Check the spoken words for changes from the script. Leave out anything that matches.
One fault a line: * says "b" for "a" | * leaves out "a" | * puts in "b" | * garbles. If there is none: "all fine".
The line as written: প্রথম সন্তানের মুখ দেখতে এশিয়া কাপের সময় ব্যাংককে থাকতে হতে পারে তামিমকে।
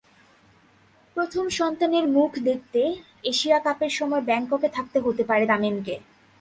all fine